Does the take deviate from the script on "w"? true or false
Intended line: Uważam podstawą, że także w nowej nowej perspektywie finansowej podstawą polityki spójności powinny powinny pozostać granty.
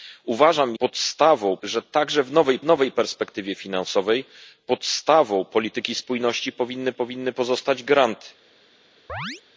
false